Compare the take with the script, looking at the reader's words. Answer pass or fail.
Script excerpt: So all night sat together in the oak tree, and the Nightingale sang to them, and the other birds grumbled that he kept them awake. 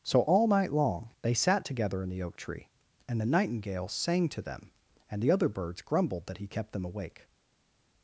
fail